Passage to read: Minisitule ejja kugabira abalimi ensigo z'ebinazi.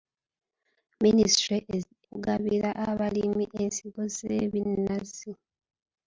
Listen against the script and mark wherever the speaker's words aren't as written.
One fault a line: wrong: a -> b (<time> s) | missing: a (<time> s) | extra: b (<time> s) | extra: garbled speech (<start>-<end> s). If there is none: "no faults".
missing: ejja (1.6 s)